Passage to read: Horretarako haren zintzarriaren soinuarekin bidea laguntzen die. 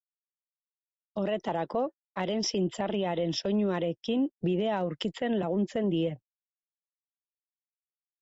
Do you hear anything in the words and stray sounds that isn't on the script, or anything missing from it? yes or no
yes